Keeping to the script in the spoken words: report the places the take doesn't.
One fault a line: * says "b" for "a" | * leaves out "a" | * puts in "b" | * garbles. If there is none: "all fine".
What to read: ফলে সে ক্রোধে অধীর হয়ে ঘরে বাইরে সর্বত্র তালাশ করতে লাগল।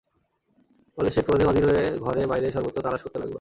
all fine